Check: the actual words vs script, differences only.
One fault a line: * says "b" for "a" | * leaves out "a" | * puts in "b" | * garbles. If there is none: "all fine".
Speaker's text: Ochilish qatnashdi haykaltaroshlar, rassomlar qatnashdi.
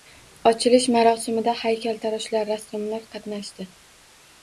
* says "marosimida" for "qatnashdi"